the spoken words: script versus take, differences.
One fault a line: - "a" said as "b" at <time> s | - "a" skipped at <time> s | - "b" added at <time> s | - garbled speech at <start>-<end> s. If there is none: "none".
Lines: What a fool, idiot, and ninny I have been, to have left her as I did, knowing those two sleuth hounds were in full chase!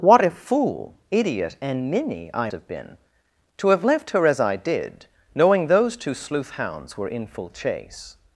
none